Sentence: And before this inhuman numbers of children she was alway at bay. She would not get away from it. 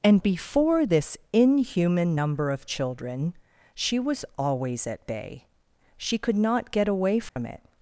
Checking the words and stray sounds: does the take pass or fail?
fail